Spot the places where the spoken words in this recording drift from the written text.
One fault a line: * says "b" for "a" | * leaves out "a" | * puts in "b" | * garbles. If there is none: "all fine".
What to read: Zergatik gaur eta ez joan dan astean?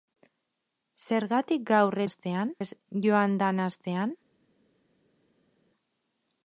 * says "astean" for "eta"